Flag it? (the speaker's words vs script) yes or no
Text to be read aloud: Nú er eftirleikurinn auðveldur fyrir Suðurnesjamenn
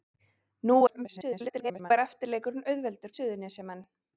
yes